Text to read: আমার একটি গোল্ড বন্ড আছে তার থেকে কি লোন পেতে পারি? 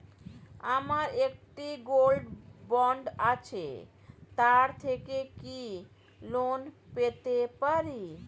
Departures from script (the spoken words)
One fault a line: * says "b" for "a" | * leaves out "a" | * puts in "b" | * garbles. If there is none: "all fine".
all fine